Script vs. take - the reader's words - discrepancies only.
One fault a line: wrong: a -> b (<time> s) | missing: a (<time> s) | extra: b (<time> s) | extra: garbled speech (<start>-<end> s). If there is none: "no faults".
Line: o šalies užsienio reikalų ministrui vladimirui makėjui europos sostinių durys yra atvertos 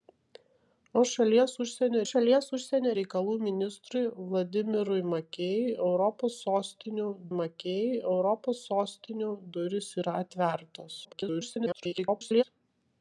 extra: šalies užsienio (2.1 s)
extra: makėjui europos sostinių (7.4 s)
extra: garbled speech (11.0-12.4 s)